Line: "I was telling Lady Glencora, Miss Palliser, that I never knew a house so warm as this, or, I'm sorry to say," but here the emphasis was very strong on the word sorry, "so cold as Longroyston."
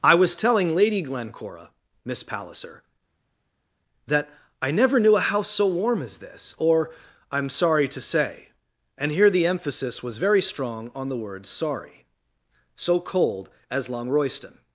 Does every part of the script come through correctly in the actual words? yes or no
no